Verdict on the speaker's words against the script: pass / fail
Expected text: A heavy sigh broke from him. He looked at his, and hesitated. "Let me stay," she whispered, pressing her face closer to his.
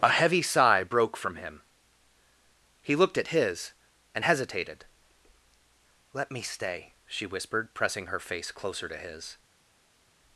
pass